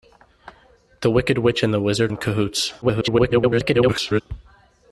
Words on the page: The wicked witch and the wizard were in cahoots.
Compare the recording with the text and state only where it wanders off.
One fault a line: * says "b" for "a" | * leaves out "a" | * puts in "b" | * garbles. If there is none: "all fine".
* leaves out "were"
* garbles